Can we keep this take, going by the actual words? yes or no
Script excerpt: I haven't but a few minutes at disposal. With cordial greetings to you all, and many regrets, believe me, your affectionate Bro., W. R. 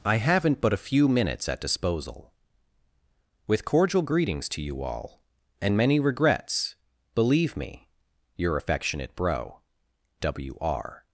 yes